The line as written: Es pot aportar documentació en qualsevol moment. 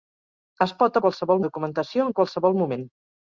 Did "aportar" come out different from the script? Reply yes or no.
yes